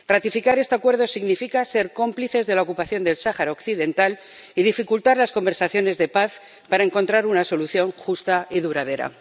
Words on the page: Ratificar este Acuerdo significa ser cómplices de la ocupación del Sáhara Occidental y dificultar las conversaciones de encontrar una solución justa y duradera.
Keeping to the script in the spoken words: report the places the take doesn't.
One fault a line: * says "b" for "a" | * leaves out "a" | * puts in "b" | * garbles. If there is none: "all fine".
* puts in "paz para"